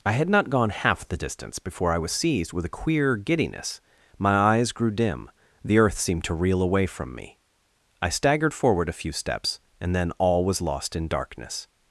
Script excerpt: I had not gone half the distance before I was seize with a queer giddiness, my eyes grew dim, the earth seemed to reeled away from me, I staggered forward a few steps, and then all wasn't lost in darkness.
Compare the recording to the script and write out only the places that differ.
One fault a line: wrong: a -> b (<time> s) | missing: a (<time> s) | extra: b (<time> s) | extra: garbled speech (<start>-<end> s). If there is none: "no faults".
wrong: seize -> seized (2.1 s)
wrong: reeled -> reel (6.3 s)
wrong: wasn't -> was (10.4 s)